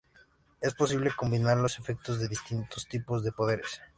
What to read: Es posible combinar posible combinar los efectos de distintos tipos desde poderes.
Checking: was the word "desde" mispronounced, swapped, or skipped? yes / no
yes